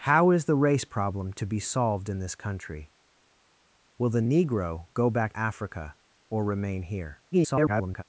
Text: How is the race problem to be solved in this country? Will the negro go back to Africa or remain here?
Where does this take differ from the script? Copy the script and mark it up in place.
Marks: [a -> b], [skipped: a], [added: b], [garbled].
How is the race problem to be solved in this country? Will the negro go back [skipped: to] Africa or remain here? [garbled]